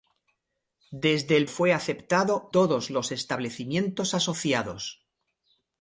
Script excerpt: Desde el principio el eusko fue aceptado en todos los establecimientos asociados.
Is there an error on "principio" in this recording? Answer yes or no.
yes